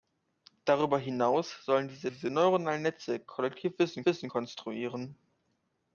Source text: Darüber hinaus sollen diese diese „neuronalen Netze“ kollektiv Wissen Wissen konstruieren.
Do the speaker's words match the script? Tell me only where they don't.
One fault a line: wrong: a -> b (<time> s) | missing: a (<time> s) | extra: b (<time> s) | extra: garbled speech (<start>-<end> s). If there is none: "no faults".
no faults